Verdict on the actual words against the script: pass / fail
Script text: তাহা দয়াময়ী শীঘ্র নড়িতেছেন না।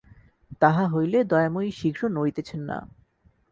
fail